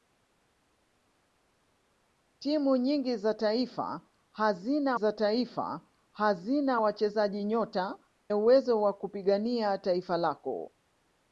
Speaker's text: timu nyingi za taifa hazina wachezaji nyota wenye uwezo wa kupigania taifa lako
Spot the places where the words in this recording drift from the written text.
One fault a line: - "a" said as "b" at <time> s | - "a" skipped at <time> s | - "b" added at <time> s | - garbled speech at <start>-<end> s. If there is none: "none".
- "za taifa hazina" added at 4.9 s
- "wenye" skipped at 8.0 s